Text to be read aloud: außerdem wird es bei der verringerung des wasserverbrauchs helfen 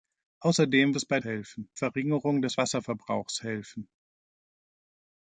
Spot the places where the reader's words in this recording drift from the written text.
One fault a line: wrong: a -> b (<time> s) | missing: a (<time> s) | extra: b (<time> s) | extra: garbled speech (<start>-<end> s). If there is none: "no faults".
missing: wird (0.9 s)
wrong: der -> helfen (1.2 s)